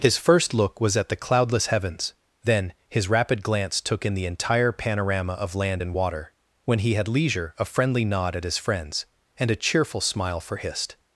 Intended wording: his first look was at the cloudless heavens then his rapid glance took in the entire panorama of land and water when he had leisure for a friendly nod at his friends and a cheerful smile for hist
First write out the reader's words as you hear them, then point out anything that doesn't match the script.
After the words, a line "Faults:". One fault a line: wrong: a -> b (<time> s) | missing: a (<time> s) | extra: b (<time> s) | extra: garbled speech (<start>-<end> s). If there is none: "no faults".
his first look was at the cloudless heavens then his rapid glance took in the entire panorama of land and water when he had leisure a friendly nod at his friends and a cheerful smile for hist
Faults:
missing: for (7.5 s)